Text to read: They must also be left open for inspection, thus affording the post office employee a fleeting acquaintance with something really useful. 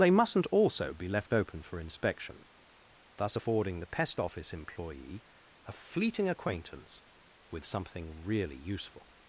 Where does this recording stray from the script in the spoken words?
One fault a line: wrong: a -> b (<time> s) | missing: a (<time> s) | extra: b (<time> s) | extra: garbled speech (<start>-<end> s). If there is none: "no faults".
wrong: must -> mustn't (0.1 s)
wrong: post -> pest (3.9 s)